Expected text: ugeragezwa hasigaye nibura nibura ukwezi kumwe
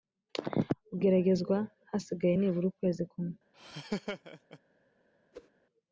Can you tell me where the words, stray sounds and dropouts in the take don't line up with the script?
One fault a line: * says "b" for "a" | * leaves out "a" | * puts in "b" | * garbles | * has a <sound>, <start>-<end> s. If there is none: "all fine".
* leaves out "nibura"
* has a laugh, 3.5-4.6 s
* has a whoosh, 5.3-5.5 s